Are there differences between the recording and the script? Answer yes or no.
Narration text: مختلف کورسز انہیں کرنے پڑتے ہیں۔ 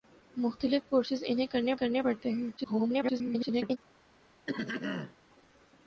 yes